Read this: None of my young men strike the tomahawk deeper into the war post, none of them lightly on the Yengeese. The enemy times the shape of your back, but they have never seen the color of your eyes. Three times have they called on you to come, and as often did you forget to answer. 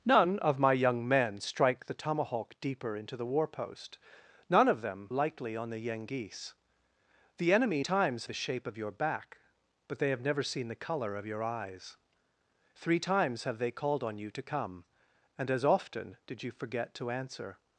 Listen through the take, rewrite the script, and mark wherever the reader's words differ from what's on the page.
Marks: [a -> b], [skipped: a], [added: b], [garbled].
None of my young men strike the tomahawk deeper into the war post, none of them lightly on the Yengeese. The enemy times the shape of your back, but they have never seen the color of your eyes. Three times have they called on you to come, and as often did you forget to answer.